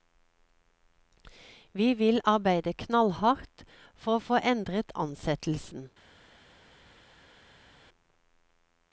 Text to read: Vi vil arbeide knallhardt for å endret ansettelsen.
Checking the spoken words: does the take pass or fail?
fail